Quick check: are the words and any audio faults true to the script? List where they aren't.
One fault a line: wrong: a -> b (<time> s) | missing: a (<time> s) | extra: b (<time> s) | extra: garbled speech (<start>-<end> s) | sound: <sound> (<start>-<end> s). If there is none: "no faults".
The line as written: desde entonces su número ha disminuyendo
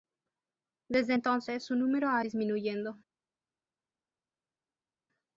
no faults